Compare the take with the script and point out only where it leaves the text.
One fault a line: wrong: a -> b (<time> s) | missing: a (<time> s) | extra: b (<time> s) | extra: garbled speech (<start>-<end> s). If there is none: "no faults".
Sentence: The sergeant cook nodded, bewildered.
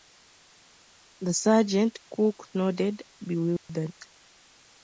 no faults